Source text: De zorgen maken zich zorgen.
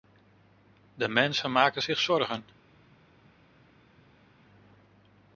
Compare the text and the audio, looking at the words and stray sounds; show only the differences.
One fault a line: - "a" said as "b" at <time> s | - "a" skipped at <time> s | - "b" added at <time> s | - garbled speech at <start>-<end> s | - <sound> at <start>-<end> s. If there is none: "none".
- "zorgen" said as "mensen" at 1.1 s